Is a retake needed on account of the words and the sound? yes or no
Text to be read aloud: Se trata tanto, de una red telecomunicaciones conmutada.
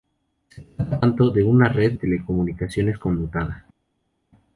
no